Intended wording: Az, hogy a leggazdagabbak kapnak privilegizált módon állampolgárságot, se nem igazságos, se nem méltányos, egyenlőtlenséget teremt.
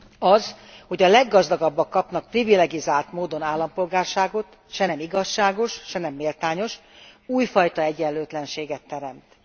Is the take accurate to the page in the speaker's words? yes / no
no